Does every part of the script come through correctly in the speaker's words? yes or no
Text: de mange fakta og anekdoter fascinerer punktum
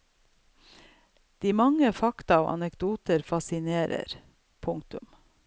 yes